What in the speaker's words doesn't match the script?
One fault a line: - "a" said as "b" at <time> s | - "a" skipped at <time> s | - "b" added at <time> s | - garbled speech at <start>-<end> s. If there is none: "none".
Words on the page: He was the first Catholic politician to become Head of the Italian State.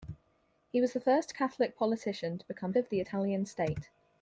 - "Head" skipped at 2.7 s